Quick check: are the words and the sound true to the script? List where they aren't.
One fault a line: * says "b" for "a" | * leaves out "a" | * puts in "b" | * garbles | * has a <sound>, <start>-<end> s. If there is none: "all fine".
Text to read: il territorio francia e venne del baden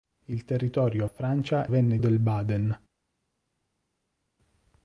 all fine